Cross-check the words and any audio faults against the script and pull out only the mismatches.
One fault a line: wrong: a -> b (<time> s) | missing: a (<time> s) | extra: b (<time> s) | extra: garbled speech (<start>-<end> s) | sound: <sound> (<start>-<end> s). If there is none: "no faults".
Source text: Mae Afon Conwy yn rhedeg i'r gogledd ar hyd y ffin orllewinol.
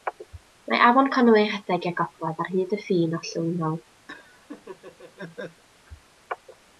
sound: laugh (4.1-5.6 s)